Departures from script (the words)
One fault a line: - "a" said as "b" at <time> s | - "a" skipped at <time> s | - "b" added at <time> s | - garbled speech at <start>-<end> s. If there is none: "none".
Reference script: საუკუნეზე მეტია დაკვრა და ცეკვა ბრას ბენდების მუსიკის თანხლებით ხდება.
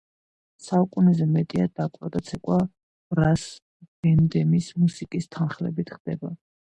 none